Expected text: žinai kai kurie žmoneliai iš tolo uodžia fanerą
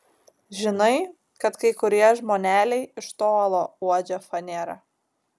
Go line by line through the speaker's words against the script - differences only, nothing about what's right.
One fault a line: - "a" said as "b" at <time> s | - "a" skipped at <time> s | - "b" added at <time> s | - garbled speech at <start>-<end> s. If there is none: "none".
- "kad" added at 1.4 s